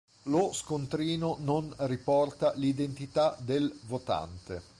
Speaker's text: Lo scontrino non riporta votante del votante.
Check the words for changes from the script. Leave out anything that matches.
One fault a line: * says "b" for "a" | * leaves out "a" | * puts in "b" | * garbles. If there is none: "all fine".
* says "l'identità" for "votante"